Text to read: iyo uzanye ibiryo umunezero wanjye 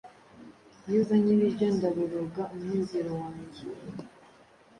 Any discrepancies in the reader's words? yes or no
yes